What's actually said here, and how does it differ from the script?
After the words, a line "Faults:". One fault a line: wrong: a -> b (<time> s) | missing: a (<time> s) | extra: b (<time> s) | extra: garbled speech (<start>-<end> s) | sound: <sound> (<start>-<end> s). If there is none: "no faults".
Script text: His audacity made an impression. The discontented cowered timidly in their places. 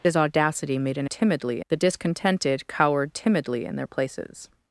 His audacity made an timidly. The discontented cowered timidly in their places.
Faults:
wrong: impression -> timidly (1.1 s)